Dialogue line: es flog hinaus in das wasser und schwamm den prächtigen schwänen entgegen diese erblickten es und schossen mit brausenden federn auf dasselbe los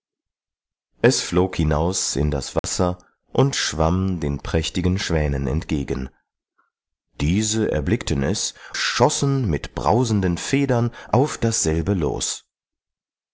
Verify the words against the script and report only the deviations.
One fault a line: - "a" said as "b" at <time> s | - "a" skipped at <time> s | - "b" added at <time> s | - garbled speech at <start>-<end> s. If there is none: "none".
- "und" skipped at 8.5 s